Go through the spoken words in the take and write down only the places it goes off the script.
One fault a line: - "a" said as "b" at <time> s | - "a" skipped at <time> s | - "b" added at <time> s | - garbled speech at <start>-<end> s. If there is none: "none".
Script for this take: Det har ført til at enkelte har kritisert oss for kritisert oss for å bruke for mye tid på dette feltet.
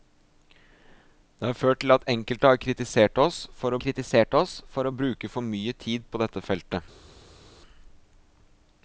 none